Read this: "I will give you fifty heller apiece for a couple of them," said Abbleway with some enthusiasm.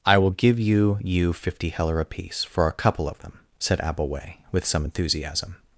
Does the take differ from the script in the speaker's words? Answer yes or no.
yes